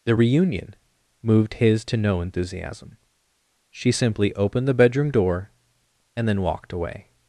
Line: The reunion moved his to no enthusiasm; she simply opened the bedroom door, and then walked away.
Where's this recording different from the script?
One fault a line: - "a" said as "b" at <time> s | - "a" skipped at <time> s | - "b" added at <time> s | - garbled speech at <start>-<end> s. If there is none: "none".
none